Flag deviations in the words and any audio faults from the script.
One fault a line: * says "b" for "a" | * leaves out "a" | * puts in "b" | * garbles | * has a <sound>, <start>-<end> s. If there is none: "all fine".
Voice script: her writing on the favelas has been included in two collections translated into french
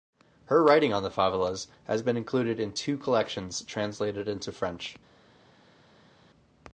all fine